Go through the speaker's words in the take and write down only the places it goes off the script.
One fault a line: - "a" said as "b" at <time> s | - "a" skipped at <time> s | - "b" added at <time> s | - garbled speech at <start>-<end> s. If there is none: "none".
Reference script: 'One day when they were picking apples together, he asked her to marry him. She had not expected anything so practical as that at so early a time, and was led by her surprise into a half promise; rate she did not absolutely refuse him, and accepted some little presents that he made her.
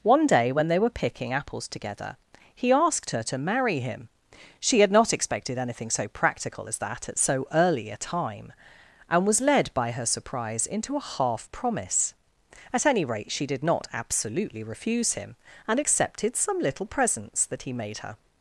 - "at any" added at 12.7 s